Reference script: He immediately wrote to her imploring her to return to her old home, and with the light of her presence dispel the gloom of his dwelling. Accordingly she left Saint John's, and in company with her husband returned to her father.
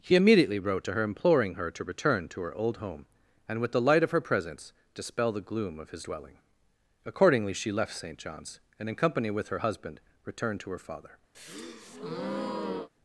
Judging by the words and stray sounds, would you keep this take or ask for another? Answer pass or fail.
fail